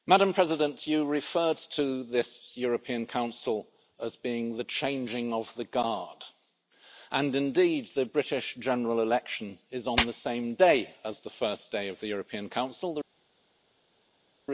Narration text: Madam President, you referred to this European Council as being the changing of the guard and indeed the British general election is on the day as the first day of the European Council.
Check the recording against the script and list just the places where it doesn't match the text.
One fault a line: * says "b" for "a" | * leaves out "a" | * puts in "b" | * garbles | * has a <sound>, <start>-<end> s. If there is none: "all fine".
* puts in "same"